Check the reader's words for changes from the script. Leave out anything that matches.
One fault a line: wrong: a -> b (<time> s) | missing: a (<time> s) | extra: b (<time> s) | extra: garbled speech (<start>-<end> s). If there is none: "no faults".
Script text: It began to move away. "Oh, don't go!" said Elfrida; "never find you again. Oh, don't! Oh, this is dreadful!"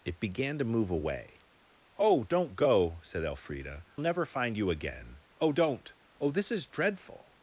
no faults